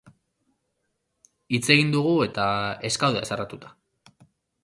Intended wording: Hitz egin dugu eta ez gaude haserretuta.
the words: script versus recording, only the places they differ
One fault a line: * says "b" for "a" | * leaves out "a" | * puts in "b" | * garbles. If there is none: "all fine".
all fine